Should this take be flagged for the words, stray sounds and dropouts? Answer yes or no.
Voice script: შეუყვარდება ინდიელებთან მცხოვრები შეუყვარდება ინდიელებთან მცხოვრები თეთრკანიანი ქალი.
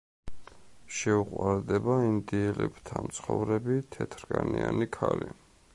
yes